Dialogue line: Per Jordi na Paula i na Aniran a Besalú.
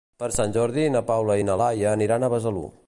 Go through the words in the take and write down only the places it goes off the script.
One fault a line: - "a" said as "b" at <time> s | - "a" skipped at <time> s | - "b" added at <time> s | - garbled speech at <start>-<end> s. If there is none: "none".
- "Sant" added at 0.3 s
- "Laia" added at 1.6 s